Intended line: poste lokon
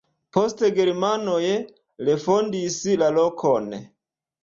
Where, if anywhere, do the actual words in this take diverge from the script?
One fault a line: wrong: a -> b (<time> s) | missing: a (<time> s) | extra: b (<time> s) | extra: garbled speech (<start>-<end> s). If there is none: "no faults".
extra: germanoj refondis la (0.8 s)